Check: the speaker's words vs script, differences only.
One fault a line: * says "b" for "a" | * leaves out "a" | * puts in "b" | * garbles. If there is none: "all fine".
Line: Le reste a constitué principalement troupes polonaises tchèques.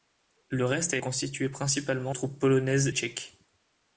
all fine